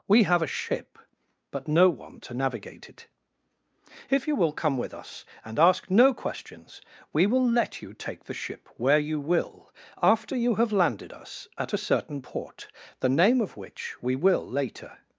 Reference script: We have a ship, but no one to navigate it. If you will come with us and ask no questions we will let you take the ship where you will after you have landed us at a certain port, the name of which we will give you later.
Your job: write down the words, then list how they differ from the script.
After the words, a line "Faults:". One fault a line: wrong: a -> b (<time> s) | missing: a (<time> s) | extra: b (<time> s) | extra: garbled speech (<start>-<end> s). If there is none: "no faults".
We have a ship, but no one to navigate it. If you will come with us and ask no questions we will let you take the ship where you will after you have landed us at a certain port, the name of which we will later.
Faults:
missing: give you (14.5 s)